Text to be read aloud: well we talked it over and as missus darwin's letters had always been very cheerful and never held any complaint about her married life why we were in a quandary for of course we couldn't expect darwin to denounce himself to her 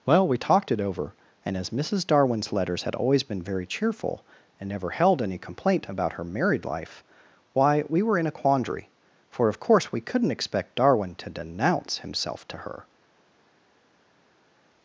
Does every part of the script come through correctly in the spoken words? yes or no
yes